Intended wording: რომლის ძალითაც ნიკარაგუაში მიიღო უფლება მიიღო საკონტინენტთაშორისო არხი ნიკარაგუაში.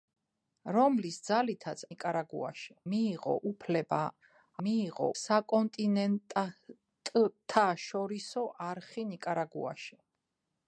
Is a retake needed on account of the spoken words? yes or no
no